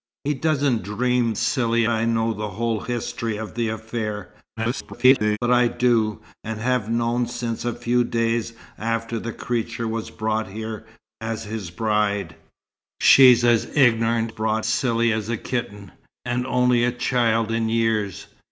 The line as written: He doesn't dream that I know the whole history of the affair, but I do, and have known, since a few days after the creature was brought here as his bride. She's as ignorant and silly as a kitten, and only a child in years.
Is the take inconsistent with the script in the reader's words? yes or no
yes